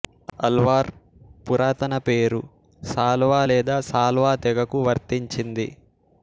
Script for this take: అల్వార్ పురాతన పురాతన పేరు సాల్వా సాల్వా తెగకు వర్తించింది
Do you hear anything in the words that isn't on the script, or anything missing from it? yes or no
yes